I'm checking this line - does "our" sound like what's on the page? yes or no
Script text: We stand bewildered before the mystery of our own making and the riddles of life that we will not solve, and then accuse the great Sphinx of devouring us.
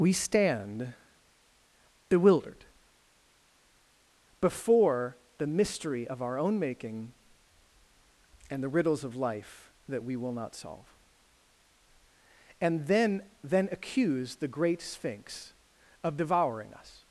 yes